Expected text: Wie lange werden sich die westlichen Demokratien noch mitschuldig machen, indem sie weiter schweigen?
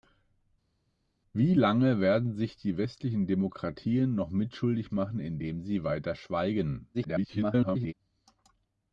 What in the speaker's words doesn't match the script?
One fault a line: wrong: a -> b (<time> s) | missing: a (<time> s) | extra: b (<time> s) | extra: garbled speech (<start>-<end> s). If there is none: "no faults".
extra: garbled speech (6.9-7.9 s)